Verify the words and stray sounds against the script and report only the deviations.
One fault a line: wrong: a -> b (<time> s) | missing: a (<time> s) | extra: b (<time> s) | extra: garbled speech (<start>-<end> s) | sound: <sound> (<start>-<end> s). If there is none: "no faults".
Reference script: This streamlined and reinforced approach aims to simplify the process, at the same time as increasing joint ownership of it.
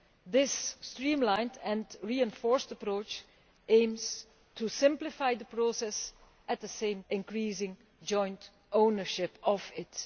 missing: time as (7.0 s)